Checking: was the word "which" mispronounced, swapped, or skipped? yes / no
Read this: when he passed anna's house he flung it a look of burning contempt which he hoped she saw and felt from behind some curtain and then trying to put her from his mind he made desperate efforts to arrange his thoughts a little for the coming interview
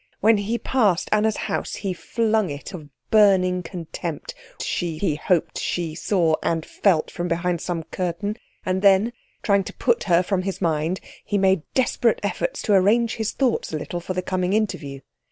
yes